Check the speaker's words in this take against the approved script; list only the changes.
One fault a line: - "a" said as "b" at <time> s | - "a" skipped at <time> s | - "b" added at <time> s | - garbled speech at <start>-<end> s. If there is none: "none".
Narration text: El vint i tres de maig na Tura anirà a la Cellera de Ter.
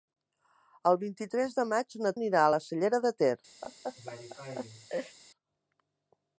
- "Tura" skipped at 2.1 s